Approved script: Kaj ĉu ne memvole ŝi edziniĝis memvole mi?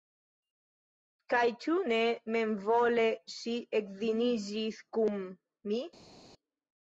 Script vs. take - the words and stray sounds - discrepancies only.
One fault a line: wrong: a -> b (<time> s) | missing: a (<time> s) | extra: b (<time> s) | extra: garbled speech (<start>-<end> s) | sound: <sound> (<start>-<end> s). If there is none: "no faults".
wrong: memvole -> kun (5.0 s)